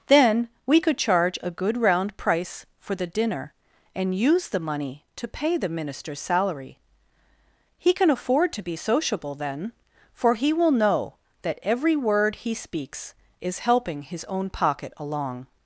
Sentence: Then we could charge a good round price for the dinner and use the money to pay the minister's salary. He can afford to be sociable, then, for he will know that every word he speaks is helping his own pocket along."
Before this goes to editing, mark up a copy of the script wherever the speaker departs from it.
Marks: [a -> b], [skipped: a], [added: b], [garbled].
Then we could charge a good round price for the dinner and use the money to pay the minister's salary. He can afford to be sociable, then, for he will know that every word he speaks is helping his own pocket along."